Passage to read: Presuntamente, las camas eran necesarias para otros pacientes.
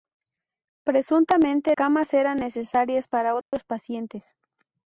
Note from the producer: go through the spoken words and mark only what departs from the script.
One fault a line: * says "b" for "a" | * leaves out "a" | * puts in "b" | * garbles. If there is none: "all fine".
* leaves out "las"